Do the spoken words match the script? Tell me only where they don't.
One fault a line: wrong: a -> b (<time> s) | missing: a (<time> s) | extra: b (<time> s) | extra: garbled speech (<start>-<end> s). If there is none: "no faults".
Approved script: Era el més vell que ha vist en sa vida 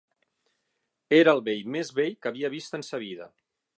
extra: vell (1.5 s)
wrong: ha -> havia (2.3 s)